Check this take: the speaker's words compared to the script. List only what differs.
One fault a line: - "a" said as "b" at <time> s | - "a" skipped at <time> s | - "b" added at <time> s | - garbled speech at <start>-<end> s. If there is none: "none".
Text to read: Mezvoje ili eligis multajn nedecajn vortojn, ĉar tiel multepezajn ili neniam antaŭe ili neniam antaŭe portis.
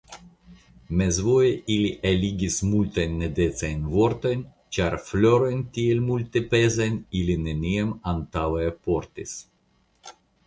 - "florojn" added at 5.1 s
- "ili neniam antaŭe" skipped at 8.6 s